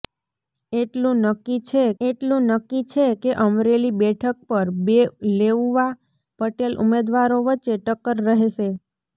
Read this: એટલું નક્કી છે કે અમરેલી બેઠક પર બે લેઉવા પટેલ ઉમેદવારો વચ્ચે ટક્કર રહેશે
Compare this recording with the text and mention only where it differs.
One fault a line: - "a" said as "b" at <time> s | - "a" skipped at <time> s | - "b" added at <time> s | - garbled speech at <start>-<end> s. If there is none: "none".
- "એટલું નક્કી છે" added at 2.0 s